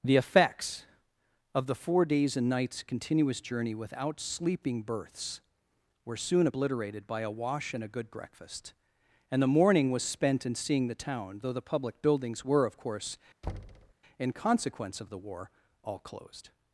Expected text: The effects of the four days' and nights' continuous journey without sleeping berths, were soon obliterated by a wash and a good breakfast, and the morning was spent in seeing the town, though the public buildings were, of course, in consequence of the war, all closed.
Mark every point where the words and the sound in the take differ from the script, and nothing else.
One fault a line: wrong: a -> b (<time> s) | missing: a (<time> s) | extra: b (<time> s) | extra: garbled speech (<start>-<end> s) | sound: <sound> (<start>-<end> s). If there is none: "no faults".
sound: thud (13.4-13.9 s)